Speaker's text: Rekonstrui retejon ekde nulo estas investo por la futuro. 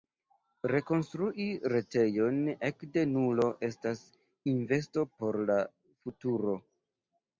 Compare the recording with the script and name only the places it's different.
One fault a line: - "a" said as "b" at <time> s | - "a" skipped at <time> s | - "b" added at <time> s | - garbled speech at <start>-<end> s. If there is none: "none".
none